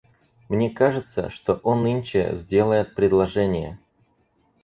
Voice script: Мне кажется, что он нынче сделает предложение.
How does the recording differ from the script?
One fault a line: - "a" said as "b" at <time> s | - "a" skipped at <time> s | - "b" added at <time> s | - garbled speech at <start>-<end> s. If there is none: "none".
none